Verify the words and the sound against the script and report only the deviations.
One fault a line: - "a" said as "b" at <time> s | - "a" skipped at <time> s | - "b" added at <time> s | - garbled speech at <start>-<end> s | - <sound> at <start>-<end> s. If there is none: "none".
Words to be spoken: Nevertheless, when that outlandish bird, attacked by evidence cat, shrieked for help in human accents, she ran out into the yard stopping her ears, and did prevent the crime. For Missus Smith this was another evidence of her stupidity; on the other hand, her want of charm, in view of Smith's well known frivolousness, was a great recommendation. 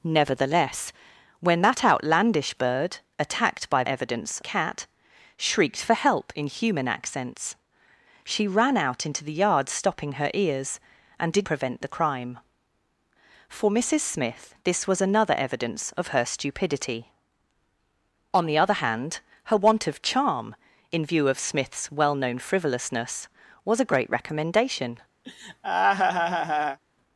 - laugh at 25.2-26.8 s